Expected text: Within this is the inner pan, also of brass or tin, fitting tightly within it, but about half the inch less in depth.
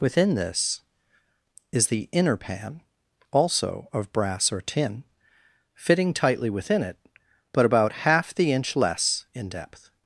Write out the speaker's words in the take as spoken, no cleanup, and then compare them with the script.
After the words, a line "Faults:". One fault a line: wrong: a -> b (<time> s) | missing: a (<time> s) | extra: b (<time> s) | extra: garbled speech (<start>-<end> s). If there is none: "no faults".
Within this is the inner pan, also of brass or tin, fitting tightly within it, but about half the inch less in depth.
Faults:
no faults